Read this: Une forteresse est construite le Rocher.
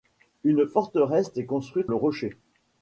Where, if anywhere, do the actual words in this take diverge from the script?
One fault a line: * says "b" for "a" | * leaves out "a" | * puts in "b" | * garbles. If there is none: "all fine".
all fine